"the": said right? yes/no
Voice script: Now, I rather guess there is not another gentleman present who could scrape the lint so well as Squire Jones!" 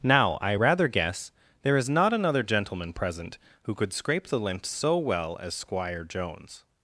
yes